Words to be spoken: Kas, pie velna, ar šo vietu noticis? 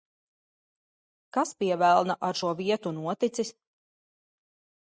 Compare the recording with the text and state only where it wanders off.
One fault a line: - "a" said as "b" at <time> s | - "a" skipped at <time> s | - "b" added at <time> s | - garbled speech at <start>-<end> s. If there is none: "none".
none